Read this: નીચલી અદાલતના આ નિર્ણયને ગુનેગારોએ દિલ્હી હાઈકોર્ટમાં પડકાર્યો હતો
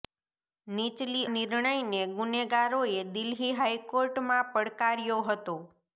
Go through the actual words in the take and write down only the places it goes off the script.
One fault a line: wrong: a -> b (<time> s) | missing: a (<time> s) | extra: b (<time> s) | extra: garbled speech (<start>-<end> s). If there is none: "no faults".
missing: અદાલતના આ (1.2 s)